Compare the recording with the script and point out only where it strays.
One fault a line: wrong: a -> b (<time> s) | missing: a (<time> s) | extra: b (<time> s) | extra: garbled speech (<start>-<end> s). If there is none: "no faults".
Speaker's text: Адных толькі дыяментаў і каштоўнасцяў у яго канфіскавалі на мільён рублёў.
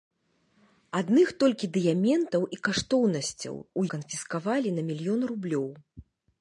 missing: яго (3.8 s)